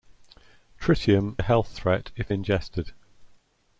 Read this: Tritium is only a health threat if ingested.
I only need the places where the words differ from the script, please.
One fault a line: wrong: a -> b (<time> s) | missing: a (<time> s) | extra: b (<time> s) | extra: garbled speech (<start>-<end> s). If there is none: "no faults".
missing: is only (1.4 s)